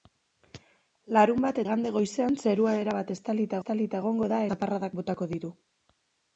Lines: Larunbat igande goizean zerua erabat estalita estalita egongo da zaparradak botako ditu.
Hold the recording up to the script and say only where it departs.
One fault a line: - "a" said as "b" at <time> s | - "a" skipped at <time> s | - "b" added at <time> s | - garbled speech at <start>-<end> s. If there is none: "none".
none